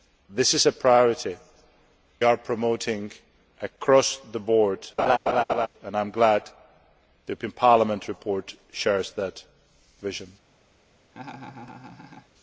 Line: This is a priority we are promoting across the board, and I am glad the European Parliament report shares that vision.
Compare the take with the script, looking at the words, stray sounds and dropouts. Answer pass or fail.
fail